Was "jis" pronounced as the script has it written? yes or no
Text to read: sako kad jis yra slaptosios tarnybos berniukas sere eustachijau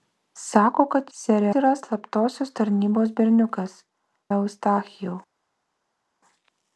no